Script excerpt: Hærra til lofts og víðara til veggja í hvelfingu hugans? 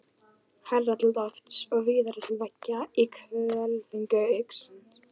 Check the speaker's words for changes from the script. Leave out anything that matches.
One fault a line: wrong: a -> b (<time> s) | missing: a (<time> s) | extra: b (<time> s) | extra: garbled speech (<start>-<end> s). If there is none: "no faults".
no faults